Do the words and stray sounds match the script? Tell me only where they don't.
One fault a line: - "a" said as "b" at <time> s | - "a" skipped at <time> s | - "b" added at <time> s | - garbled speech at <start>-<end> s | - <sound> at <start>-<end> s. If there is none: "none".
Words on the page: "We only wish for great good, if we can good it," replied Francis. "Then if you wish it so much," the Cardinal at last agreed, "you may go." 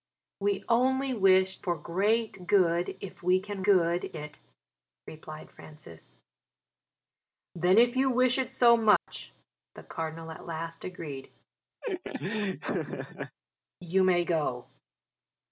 - dropout at 9.0-9.1 s
- laugh at 11.8-13.4 s